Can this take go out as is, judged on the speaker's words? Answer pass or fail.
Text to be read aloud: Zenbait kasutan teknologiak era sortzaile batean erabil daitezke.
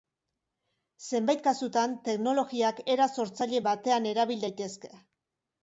pass